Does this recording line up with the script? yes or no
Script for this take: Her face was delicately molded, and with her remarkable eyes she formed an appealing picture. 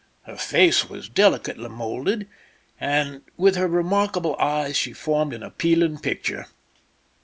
yes